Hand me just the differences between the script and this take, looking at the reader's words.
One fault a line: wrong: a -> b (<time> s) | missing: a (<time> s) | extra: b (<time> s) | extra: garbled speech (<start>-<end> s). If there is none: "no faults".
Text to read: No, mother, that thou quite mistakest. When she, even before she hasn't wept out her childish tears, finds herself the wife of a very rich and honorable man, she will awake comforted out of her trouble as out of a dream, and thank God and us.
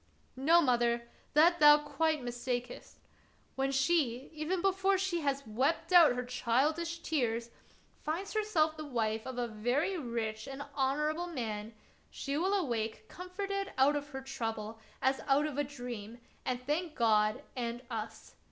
wrong: hasn't -> has (5.2 s)